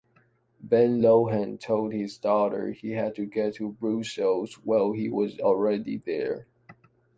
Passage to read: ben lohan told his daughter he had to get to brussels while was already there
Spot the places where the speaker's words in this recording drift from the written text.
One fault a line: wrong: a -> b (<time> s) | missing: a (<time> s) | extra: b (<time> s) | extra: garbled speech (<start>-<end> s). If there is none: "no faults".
extra: he (4.9 s)